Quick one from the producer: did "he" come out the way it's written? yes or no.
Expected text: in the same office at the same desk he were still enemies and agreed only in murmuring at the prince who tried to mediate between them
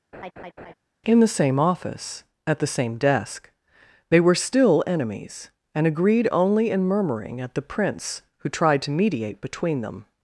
no